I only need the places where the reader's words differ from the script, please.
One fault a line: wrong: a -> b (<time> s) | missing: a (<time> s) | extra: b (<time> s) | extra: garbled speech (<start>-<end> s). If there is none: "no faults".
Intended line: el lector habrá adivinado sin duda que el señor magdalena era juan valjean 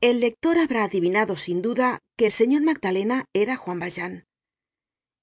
no faults